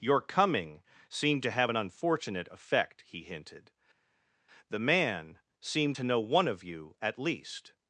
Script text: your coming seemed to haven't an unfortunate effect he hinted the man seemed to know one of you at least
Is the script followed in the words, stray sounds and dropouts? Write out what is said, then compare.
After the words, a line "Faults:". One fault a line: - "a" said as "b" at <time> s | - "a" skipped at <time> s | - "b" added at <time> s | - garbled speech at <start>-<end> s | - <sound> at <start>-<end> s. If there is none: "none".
your coming seemed to have an unfortunate effect he hinted the man seemed to know one of you at least
Faults:
- "haven't" said as "have" at 1.5 s